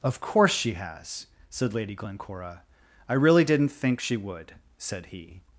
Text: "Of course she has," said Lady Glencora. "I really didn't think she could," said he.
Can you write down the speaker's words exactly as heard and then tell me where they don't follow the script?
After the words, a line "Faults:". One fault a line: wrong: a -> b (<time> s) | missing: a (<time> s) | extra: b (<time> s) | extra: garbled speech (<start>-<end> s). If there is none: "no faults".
"Of course she has," said Lady Glencora. "I really didn't think she would," said he.
Faults:
wrong: could -> would (4.2 s)